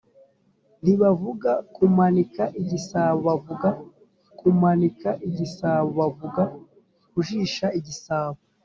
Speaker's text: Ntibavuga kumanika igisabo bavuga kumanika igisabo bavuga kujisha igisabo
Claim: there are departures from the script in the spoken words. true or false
false